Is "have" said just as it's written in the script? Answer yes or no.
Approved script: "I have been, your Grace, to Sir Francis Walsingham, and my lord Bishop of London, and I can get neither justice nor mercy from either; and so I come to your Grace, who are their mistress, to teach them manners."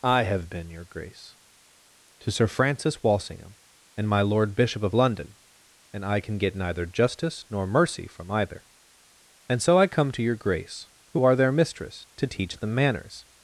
yes